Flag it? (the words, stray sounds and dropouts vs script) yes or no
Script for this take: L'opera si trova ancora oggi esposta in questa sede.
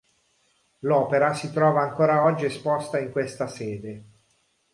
no